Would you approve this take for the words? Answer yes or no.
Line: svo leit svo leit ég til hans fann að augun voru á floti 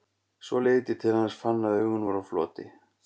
no